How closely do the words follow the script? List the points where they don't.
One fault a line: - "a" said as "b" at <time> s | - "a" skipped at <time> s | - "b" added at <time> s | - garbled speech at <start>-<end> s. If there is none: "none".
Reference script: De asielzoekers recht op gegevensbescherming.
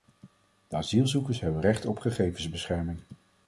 - "hebben" added at 1.4 s